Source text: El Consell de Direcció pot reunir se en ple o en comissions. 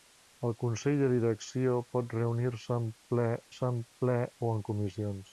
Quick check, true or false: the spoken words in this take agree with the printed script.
false